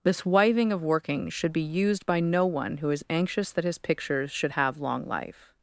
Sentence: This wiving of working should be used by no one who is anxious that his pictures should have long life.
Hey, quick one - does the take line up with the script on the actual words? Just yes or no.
yes